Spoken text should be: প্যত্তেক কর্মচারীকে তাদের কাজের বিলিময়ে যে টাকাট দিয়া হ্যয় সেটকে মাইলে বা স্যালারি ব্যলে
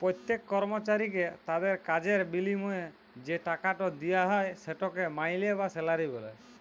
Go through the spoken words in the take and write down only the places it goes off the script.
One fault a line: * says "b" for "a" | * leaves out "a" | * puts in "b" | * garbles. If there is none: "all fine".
all fine